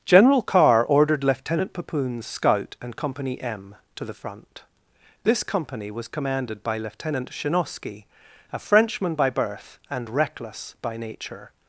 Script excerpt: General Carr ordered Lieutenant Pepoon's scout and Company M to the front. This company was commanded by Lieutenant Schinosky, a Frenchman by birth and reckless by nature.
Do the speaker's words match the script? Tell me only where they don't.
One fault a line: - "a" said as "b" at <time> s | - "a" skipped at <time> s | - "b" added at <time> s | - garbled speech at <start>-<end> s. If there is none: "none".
none